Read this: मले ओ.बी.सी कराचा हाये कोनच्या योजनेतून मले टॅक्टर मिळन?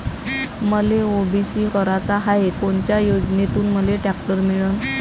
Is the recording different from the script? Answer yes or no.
no